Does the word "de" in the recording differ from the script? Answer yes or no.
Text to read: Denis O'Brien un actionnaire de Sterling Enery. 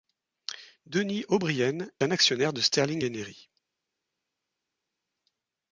no